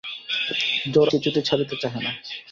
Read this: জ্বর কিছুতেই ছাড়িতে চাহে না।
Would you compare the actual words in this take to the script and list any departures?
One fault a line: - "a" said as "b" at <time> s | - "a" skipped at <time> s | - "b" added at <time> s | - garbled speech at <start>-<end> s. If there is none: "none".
none